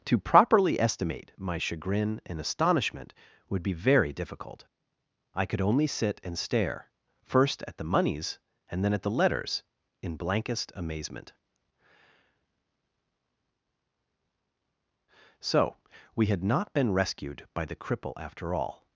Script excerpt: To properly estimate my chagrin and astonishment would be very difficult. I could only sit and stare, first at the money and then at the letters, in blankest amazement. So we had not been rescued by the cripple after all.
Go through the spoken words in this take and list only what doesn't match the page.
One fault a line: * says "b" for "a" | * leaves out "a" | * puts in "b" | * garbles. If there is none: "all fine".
* says "moneys" for "money"